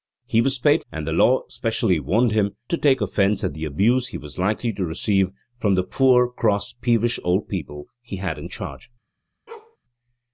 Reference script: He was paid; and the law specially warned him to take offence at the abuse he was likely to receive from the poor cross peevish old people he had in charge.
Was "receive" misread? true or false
false